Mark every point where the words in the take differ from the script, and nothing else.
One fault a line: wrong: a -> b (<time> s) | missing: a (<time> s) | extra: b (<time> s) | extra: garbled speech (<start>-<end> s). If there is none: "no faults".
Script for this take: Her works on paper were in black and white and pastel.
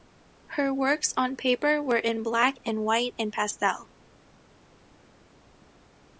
no faults